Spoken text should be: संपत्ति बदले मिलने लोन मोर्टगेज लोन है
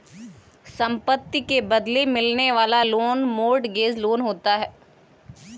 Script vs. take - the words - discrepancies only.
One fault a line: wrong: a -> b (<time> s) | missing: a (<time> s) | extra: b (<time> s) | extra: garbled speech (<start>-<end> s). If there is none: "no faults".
extra: के (1.4 s)
extra: वाला (2.5 s)
extra: होता (4.2 s)